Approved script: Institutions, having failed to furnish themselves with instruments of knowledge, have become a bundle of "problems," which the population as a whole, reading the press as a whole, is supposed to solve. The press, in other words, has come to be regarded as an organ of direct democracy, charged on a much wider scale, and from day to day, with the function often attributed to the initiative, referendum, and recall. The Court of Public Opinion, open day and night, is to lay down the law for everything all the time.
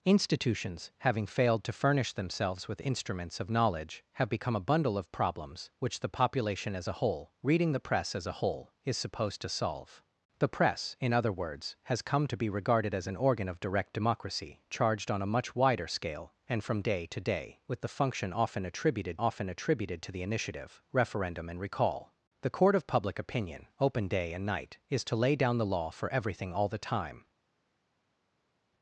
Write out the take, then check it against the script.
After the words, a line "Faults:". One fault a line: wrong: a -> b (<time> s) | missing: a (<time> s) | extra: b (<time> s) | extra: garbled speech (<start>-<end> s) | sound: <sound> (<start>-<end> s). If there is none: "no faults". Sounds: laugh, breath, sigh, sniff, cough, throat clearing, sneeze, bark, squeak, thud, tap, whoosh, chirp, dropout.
Institutions, having failed to furnish themselves with instruments of knowledge, have become a bundle of "problems," which the population as a whole, reading the press as a whole, is supposed to solve. The press, in other words, has come to be regarded as an organ of direct democracy, charged on a much wider scale, and from day to day, with the function often attributed often attributed to the initiative, referendum, and recall. The Court of Public Opinion, open day and night, is to lay down the law for everything all the time.
Faults:
extra: often attributed (19.2 s)